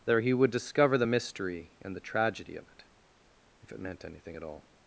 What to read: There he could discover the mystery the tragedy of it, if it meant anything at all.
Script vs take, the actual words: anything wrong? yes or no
yes